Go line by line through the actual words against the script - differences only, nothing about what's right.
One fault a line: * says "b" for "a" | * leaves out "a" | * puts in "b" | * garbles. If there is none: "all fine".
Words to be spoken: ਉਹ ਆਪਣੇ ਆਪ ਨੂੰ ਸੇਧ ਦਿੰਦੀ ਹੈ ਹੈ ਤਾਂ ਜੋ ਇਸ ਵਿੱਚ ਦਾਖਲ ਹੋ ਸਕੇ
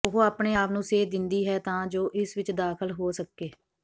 * leaves out "ਹੈ"